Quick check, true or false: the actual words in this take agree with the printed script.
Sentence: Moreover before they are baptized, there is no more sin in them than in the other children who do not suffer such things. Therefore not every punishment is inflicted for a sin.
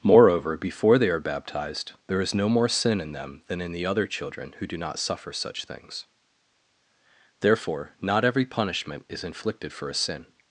true